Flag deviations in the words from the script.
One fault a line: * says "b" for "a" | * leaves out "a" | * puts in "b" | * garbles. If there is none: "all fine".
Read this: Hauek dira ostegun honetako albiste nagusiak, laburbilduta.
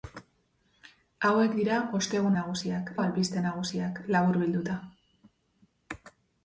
* says "nagusiak" for "honetako"